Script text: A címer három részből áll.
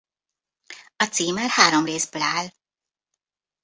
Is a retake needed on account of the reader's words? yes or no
no